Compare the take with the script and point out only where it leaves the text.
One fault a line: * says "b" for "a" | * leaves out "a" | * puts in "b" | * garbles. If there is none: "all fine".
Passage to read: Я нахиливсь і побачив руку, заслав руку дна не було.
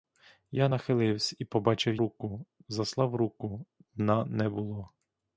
all fine